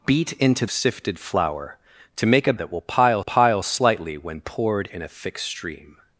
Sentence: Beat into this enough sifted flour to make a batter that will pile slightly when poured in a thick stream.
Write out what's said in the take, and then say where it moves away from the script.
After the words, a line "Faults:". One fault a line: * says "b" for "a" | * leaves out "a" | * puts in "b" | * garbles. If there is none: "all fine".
Beat into sifted flour to make a that will pile pile slightly when poured in a thick stream.
Faults:
* leaves out "this enough"
* leaves out "batter"
* puts in "pile"